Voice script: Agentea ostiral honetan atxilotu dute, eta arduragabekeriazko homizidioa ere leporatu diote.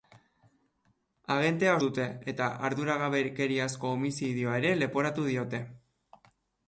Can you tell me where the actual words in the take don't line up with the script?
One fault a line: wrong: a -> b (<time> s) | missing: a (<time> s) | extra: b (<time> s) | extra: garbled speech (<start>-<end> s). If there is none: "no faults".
missing: ostiral honetan atxilotu (1.8 s)